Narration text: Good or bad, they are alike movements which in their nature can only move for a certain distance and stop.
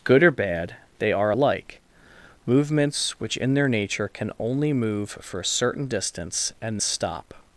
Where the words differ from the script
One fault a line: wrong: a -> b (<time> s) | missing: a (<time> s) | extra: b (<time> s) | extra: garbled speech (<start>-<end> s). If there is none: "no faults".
no faults